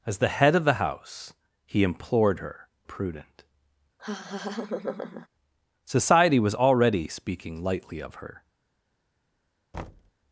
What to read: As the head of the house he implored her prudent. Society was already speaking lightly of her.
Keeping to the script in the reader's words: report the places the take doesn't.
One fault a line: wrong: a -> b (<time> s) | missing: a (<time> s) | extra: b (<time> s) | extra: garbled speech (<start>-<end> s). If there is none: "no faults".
no faults